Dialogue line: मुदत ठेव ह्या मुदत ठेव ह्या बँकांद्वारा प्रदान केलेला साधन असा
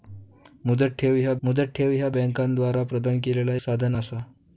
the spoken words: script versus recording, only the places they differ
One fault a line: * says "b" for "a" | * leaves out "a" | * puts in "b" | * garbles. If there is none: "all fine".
all fine